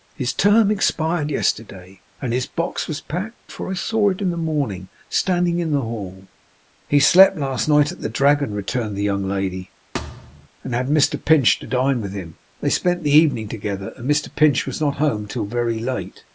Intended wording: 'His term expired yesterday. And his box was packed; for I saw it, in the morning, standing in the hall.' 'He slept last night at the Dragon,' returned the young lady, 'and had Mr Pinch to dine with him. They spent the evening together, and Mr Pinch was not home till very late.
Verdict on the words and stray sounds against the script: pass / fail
fail